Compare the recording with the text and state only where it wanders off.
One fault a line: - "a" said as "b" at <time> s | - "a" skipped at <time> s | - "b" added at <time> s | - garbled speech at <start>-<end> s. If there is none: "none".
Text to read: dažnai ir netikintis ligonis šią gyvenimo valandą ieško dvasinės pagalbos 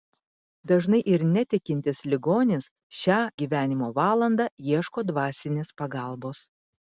none